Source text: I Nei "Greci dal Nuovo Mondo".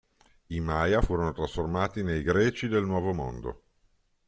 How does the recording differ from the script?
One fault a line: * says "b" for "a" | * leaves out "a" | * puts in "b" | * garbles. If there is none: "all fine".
* puts in "Maya furono trasformati"
* says "del" for "dal"